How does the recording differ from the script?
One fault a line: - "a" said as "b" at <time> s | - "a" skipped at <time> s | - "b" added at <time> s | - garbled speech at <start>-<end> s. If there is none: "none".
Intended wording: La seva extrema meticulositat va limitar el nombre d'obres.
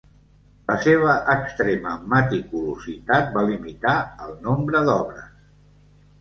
none